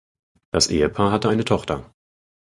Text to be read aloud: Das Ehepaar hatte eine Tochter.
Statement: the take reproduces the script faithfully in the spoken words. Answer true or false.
true